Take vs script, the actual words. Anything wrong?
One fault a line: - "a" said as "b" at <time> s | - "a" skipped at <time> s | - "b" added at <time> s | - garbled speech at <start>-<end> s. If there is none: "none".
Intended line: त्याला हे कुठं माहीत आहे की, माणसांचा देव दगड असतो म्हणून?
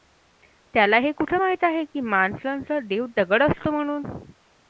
none